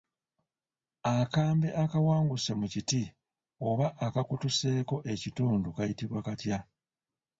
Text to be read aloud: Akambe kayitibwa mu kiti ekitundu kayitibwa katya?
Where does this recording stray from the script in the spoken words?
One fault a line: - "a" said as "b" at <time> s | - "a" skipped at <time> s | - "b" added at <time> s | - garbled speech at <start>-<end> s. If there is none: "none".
- "kayitibwa" said as "akawanguse" at 1.8 s
- "oba akakutuseeko" added at 3.7 s